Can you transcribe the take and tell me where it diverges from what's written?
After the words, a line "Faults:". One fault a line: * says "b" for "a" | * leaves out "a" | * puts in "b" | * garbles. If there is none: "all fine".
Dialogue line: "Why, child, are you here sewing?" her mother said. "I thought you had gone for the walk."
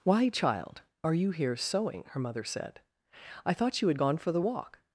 "Why, child, are you here sewing?" her mother said. "I thought you had gone for the walk."
Faults:
all fine